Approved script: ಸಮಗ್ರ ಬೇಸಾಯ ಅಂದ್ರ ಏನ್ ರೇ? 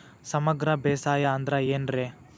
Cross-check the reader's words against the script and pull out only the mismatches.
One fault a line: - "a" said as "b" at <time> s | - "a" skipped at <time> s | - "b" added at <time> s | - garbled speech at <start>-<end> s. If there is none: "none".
none